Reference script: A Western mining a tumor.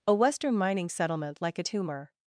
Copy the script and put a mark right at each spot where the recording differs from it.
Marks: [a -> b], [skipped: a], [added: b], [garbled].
A Western mining [added: settlement like] a tumor.